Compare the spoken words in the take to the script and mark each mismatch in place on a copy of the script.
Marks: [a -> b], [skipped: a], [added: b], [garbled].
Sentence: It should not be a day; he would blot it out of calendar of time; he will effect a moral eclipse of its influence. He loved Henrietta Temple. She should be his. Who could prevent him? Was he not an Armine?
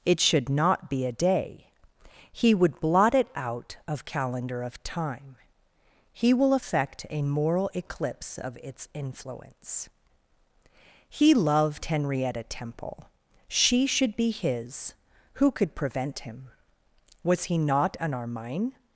It should not be a day; he would blot it out of calendar of time; he will effect a moral eclipse of its influence. He loved Henrietta Temple. She should be his. Who could prevent him? Was he not an Armine?